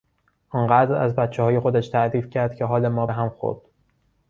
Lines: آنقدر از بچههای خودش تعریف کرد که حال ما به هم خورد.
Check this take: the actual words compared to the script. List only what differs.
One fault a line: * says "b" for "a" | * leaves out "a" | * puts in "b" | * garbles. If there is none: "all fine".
all fine